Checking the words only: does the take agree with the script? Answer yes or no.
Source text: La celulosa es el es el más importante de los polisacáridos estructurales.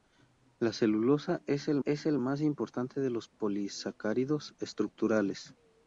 yes